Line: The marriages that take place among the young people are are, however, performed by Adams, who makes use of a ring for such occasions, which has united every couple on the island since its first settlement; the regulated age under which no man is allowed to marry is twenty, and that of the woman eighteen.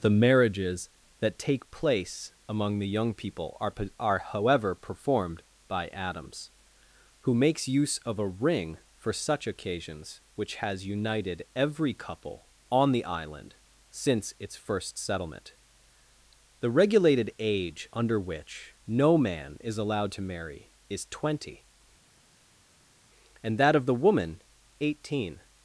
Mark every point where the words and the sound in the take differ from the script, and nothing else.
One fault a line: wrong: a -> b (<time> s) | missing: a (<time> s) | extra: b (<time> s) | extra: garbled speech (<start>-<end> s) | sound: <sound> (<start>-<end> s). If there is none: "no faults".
no faults